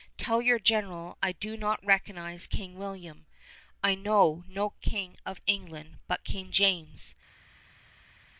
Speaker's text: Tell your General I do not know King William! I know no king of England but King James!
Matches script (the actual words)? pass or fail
fail